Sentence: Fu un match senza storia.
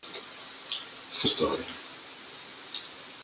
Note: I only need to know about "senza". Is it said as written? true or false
false